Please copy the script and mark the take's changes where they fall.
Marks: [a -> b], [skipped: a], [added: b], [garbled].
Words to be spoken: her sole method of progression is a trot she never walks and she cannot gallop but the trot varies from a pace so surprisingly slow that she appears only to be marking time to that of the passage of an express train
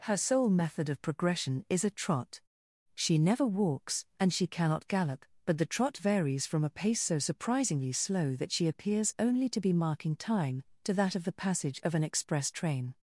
her sole method of progression is a trot she never walks and she cannot gallop but the trot varies from a pace so surprisingly slow that she appears only to be marking time to that of the passage of an express train